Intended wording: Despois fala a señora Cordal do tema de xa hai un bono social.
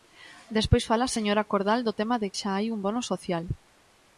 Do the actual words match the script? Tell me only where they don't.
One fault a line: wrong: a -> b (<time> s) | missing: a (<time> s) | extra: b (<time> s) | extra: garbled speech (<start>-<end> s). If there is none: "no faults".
no faults